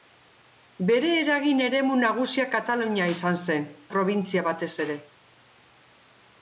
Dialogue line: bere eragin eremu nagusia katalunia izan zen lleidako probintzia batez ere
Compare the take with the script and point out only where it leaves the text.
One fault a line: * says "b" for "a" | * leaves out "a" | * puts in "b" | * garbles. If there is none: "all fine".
* leaves out "lleidako"